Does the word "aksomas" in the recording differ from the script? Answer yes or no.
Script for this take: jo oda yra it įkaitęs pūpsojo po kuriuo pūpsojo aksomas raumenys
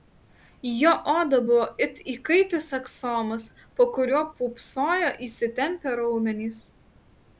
yes